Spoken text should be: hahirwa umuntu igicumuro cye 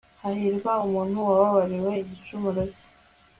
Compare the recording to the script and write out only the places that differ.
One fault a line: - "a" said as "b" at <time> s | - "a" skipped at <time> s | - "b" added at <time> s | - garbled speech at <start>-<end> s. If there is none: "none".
- "wababariwe" added at 1.3 s